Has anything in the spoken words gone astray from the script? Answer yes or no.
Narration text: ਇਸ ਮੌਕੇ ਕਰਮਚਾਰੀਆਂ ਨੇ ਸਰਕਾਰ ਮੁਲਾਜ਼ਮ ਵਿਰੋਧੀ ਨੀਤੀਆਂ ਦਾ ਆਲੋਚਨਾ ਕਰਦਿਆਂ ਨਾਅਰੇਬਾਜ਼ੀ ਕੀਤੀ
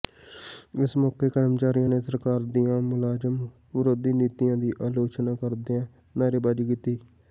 yes